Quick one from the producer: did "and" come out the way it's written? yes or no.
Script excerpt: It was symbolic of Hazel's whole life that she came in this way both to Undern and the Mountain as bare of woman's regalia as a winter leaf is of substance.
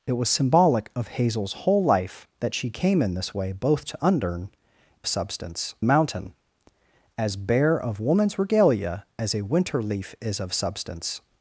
no